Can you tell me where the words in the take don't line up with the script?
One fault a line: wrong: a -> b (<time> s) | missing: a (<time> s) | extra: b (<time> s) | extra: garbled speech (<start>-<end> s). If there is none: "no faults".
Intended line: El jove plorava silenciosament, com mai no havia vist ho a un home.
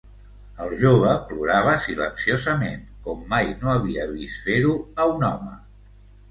extra: fer (4.5 s)